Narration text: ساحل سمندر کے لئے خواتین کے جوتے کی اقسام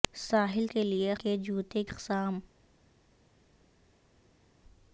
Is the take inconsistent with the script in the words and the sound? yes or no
yes